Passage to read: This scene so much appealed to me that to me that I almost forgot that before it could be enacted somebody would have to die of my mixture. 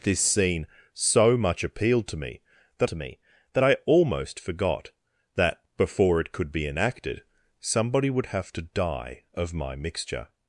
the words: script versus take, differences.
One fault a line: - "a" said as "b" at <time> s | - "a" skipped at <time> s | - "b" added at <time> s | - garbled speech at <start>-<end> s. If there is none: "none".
none